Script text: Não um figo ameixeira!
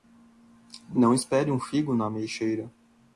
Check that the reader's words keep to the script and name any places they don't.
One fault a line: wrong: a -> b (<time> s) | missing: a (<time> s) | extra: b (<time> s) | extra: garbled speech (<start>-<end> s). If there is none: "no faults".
extra: espere (1.1 s)
extra: na (1.9 s)